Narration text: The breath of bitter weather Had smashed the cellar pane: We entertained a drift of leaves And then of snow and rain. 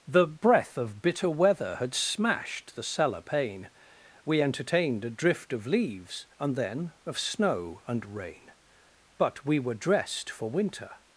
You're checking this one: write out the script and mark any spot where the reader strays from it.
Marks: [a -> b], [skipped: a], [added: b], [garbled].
The breath of bitter weather Had smashed the cellar pane: We entertained a drift of leaves And then of snow and rain. [added: But we were dressed for winter]